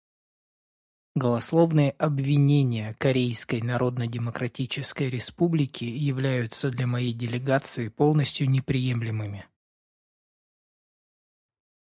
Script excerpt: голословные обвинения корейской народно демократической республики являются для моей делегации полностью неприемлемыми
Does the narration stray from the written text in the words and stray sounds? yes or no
no